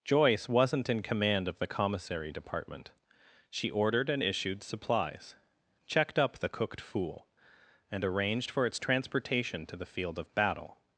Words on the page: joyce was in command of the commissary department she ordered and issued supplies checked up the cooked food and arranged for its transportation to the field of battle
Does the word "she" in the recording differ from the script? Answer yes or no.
no